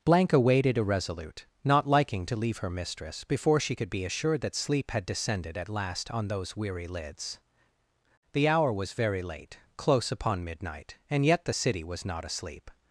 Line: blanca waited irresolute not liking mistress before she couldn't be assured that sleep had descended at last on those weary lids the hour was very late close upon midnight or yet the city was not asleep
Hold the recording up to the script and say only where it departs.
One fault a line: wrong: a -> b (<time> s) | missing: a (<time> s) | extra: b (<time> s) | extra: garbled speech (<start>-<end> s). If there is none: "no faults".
extra: to leave her (2.2 s)
wrong: couldn't -> could (3.7 s)
wrong: or -> and (11.1 s)